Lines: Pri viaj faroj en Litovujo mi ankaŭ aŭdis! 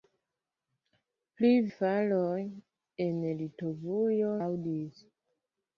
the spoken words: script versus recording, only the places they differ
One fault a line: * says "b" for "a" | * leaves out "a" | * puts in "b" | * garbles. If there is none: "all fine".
* leaves out "viaj"
* leaves out "mi ankaŭ"